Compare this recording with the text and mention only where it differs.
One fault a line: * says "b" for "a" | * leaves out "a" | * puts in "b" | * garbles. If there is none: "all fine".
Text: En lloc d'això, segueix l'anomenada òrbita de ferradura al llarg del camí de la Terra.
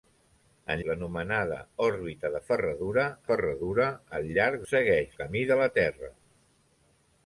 * leaves out "lloc d'això segueix"
* puts in "ferradura"
* says "segueix" for "del"